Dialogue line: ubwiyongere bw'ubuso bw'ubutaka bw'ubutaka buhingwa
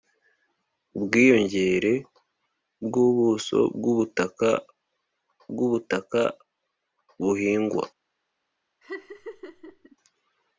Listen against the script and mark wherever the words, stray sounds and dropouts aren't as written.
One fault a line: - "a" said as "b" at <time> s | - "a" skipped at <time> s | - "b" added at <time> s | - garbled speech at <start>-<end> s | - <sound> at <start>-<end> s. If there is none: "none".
- laugh at 8.8-10.0 s